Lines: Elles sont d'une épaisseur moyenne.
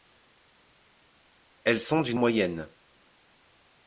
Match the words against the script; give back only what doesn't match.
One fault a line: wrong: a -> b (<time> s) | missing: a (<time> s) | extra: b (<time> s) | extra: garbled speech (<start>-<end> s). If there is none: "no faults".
missing: épaisseur (2.2 s)